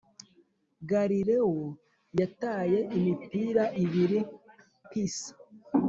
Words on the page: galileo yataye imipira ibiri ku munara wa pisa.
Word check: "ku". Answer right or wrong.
wrong